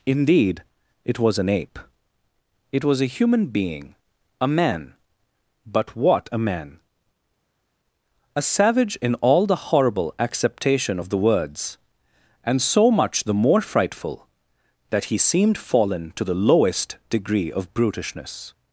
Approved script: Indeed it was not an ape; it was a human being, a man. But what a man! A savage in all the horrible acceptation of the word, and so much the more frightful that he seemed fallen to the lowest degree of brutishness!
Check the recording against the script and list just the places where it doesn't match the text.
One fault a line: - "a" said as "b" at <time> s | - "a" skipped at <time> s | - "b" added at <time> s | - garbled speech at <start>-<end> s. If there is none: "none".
- "not" skipped at 1.4 s
- "word" said as "words" at 11.2 s